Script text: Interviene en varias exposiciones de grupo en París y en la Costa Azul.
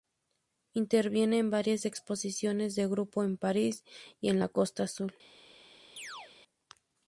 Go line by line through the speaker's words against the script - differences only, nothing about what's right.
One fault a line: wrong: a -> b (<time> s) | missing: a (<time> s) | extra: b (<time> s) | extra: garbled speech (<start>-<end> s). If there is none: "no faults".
no faults